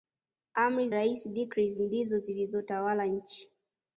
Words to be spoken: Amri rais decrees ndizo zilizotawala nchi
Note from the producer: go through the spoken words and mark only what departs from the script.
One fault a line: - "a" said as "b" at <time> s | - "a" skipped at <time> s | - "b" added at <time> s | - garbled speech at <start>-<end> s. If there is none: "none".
none